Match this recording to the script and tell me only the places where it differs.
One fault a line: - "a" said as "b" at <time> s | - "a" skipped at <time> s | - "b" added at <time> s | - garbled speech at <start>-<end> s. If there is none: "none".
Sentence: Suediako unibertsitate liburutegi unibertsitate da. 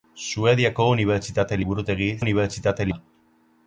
none